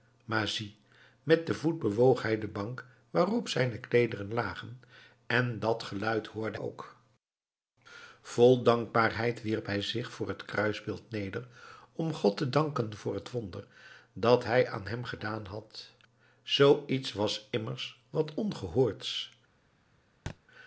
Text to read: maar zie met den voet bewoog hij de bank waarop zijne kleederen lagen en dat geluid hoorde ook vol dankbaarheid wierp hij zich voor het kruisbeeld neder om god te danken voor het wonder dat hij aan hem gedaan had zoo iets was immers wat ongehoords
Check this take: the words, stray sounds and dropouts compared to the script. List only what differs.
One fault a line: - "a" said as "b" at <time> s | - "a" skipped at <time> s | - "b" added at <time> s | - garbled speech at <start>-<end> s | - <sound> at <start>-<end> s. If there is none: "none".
- thud at 20.3-20.4 s